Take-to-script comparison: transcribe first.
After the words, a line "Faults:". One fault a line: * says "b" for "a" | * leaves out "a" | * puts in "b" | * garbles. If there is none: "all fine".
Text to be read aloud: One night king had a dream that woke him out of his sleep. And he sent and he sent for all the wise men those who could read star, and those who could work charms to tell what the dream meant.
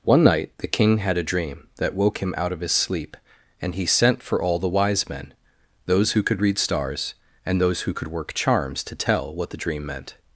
One night the king had a dream that woke him out of his sleep. And he sent for all the wise men those who could read stars, and those who could work charms to tell what the dream meant.
Faults:
* puts in "the"
* leaves out "and he sent"
* says "stars" for "star"